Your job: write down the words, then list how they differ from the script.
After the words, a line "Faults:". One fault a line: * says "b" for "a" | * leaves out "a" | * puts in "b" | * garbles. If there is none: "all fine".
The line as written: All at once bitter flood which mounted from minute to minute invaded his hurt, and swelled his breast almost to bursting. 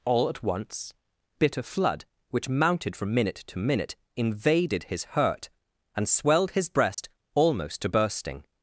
All at once bitter flood which mounted from minute to minute invaded his hurt, and swelled his breast almost to bursting.
Faults:
all fine